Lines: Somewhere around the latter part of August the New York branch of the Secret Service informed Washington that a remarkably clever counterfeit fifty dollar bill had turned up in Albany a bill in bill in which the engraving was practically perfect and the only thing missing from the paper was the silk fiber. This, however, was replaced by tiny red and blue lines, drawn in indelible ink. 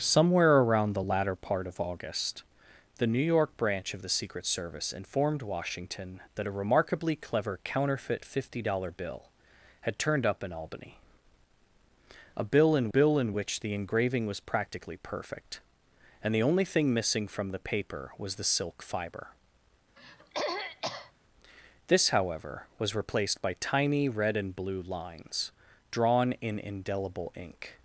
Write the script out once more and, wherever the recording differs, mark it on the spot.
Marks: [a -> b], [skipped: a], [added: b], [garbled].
Somewhere around the latter part of August the New York branch of the Secret Service informed Washington that a remarkably clever counterfeit fifty dollar bill had turned up in Albany a bill in bill in which the engraving was practically perfect and the only thing missing from the paper was the silk fiber. This, however, was replaced by tiny red and blue lines, drawn in indelible ink.